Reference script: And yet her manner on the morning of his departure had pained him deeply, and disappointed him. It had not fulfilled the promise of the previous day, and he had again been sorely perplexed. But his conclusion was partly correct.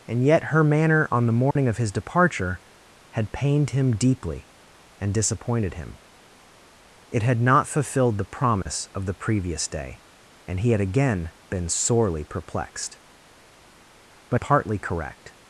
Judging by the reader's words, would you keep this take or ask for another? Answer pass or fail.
fail